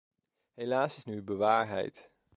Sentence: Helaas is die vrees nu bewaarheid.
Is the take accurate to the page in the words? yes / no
no